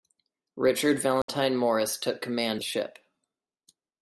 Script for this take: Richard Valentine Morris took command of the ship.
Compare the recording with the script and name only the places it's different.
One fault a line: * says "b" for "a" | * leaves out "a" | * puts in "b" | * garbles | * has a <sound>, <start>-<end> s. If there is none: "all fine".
* has a dropout, 1.2-1.3 s
* leaves out "of"